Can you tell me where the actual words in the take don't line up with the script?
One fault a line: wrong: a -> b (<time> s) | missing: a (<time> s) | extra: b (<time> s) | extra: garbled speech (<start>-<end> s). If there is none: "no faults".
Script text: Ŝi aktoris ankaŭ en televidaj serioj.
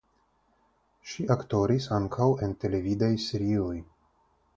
no faults